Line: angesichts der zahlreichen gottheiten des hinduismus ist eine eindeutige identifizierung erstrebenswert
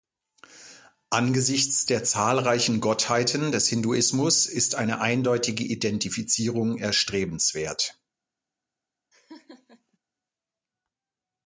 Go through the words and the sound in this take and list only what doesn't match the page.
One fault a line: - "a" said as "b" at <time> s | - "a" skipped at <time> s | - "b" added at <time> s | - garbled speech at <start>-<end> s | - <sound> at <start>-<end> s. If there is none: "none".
- laugh at 9.1-10.0 s